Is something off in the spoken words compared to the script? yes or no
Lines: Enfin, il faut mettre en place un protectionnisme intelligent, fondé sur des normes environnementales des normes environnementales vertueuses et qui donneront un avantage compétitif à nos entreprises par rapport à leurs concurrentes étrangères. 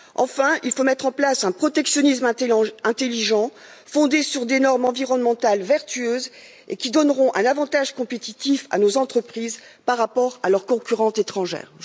yes